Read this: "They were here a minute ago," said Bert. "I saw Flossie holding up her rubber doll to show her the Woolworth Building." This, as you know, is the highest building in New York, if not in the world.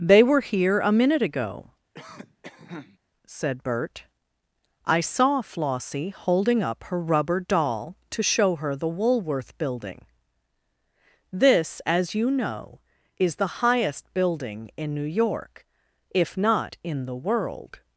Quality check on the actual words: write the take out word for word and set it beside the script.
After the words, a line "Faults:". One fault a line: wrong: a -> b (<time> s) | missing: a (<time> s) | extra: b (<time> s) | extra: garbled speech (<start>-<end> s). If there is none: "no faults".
"They were here a minute ago," said Bert. "I saw Flossie holding up her rubber doll to show her the Woolworth Building." This, as you know, is the highest building in New York, if not in the world.
Faults:
no faults